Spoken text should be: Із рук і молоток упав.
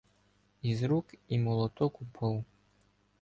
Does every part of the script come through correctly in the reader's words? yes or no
yes